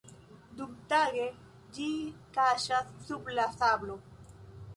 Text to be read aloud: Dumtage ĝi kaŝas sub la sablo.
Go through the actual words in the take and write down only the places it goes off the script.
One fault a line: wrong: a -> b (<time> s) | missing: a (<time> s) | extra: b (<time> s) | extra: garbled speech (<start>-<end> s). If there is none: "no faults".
no faults